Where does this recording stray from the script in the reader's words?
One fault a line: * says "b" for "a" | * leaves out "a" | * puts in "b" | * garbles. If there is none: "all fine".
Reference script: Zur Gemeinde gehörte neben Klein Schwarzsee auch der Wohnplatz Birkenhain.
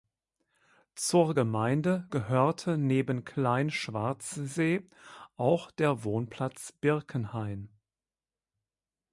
all fine